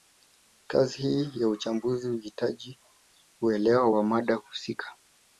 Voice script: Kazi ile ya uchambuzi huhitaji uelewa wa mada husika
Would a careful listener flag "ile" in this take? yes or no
yes